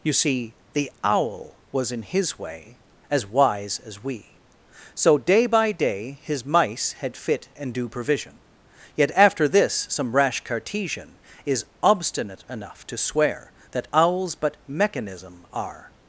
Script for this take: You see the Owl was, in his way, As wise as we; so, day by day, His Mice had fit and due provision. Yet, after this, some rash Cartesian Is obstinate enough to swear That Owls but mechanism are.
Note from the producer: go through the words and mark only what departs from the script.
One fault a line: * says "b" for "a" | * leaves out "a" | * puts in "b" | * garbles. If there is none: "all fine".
all fine